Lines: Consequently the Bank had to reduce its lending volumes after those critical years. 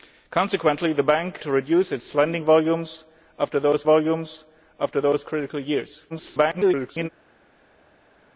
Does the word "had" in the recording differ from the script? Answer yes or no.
yes